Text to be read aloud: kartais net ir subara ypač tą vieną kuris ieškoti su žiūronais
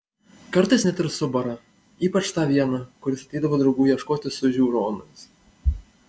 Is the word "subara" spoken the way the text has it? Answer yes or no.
yes